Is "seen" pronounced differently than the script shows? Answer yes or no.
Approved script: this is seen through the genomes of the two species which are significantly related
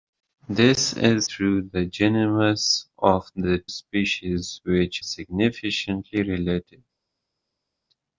yes